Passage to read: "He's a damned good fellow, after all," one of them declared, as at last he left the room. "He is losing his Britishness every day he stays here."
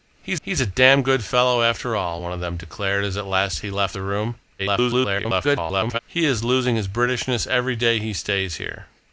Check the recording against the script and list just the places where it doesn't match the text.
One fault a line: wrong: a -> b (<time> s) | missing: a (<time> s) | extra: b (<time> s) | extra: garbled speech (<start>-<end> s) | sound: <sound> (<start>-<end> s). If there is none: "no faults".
extra: he's (0.4 s)
extra: garbled speech (4.6-6.0 s)